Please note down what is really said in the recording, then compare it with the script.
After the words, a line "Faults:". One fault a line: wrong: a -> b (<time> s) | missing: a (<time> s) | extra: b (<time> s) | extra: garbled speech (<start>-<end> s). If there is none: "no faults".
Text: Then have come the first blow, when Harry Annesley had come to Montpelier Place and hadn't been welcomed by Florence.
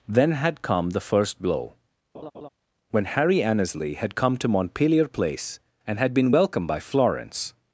Then had come the first blow, when Harry Annesley had come to Montpelier Place and had been welcomed by Florence.
Faults:
wrong: have -> had (0.3 s)
wrong: hadn't -> had (6.0 s)